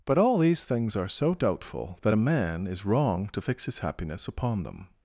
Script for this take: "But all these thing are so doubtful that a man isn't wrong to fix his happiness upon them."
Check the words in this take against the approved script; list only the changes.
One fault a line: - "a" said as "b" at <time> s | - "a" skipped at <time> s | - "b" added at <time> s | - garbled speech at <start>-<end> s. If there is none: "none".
- "thing" said as "things" at 0.6 s
- "isn't" said as "is" at 2.7 s